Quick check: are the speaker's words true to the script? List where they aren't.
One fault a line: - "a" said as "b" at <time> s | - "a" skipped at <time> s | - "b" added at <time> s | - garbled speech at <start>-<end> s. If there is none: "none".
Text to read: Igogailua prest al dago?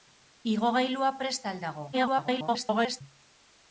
- garbled speech at 1.9-3.0 s